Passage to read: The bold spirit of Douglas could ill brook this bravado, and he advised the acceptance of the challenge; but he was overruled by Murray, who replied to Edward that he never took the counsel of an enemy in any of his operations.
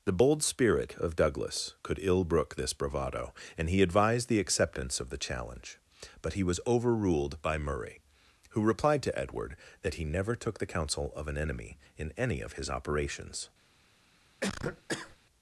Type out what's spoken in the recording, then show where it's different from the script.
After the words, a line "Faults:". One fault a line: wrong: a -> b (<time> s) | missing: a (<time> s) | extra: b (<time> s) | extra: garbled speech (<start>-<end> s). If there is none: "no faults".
The bold spirit of Douglas could ill brook this bravado, and he advised the acceptance of the challenge; but he was overruled by Murray, who replied to Edward that he never took the counsel of an enemy in any of his operations.
Faults:
no faults